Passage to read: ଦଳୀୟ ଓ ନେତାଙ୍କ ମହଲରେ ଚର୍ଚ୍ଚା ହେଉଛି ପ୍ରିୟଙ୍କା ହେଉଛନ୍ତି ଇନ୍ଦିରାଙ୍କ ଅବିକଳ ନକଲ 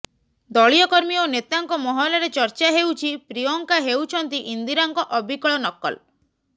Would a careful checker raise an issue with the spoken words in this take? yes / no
yes